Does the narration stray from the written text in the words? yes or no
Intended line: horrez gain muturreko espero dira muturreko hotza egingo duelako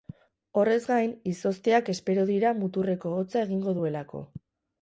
yes